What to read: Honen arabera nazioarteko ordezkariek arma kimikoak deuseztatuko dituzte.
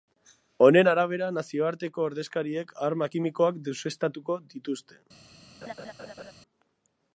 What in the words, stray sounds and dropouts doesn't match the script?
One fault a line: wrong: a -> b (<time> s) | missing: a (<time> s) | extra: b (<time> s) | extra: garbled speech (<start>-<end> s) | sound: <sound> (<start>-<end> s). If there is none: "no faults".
sound: laugh (5.6-6.3 s)